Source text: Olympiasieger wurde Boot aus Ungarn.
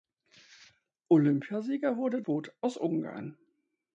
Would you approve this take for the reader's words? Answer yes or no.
yes